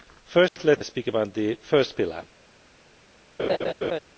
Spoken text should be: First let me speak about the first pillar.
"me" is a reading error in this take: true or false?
true